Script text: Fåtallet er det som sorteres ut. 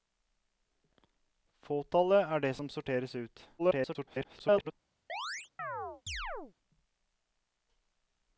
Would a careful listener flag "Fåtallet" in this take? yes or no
no